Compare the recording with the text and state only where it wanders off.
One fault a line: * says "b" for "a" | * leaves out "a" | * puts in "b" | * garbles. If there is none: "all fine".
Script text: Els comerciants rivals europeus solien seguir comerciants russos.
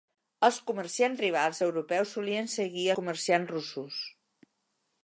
all fine